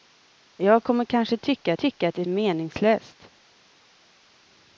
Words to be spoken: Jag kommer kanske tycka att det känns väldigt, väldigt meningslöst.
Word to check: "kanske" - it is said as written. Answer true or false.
true